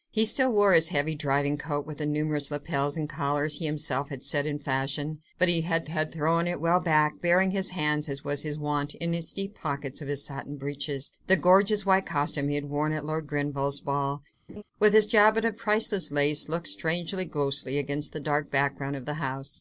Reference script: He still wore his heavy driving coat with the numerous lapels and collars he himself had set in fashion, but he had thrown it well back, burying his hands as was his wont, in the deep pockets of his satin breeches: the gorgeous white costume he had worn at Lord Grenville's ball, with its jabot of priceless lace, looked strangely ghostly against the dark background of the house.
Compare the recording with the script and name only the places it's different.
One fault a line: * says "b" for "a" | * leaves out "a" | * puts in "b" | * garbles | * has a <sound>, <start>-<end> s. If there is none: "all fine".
* puts in "had"
* has a laugh, 14.5-14.6 s